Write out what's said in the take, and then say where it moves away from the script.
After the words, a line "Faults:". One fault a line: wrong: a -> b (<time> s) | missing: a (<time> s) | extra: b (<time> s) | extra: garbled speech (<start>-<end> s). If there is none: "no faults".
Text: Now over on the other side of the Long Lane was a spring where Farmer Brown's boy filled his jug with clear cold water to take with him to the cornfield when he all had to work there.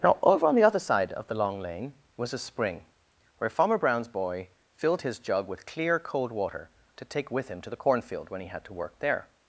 Now over on the other side of the Long Lane was a spring where Farmer Brown's boy filled his jug with clear cold water to take with him to the cornfield when he had to work there.
Faults:
missing: all (8.5 s)